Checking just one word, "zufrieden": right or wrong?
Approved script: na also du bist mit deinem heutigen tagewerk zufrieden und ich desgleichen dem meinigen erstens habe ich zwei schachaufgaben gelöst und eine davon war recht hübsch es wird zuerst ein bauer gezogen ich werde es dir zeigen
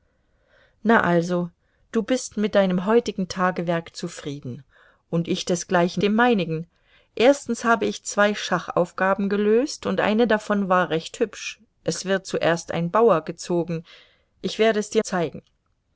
right